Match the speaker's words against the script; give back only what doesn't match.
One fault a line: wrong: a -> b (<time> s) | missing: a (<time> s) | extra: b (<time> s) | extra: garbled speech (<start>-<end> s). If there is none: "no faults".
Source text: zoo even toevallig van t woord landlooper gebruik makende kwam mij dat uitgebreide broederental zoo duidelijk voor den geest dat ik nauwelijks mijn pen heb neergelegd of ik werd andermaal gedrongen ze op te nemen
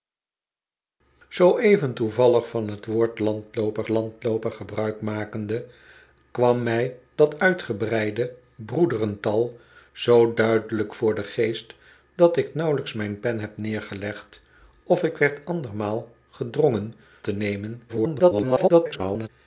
extra: landlooper (3.9 s)
missing: ze op (16.9 s)
extra: garbled speech (17.9-19.3 s)